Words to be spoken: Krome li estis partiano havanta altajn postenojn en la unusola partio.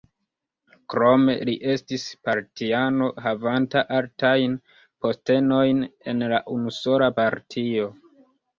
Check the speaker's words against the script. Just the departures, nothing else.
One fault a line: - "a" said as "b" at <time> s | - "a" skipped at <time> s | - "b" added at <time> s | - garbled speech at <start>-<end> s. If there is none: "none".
none